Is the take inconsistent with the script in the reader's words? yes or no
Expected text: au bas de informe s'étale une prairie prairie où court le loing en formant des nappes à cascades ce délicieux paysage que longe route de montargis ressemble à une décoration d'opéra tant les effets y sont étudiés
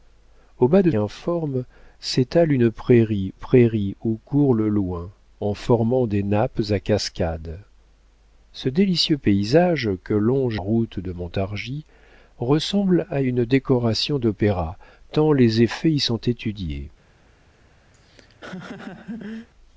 no